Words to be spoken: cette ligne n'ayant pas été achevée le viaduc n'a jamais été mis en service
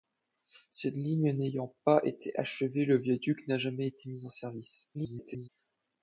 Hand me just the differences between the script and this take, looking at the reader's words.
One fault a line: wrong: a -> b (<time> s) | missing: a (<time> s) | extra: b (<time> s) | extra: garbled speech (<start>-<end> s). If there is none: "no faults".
extra: garbled speech (4.9-5.5 s)